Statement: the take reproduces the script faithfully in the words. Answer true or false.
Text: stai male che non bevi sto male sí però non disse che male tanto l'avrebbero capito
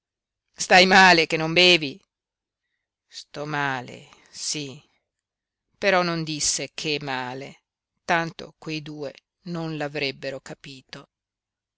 false